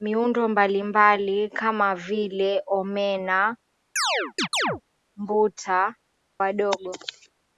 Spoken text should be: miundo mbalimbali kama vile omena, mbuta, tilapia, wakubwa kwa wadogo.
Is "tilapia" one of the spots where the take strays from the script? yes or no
yes